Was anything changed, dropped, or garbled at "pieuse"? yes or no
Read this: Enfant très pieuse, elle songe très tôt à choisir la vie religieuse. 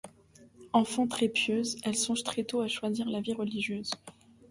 no